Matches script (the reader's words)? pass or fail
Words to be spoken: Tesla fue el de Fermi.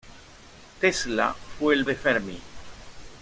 pass